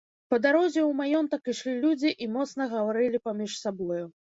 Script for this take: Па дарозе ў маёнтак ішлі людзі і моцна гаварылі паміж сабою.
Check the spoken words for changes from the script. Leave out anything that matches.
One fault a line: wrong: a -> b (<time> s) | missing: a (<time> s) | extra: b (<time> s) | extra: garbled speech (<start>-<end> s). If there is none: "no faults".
no faults